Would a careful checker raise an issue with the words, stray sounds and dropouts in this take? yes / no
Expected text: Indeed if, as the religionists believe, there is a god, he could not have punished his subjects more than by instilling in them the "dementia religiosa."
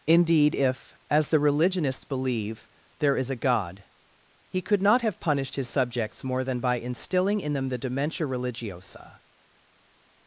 no